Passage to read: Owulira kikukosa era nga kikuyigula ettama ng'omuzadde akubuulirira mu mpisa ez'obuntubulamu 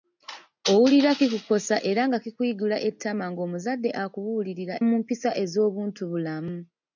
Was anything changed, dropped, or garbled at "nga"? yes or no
no